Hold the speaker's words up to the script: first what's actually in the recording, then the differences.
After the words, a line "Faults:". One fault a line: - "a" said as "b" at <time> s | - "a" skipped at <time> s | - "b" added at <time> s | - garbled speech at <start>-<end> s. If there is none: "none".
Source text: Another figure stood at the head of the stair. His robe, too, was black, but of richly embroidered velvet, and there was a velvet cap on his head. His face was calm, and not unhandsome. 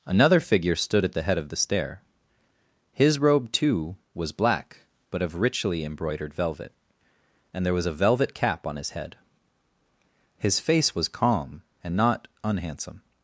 Another figure stood at the head of the stair. His robe, too, was black, but of richly embroidered velvet, and there was a velvet cap on his head. His face was calm, and not unhandsome.
Faults:
none